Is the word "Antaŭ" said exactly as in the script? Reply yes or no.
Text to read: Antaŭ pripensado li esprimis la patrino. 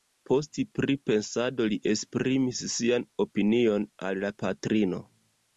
no